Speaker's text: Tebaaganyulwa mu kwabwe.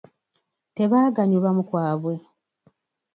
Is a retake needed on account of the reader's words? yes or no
no